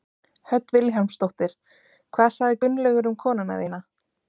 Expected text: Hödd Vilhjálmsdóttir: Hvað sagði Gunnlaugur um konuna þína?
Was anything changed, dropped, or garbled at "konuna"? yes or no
no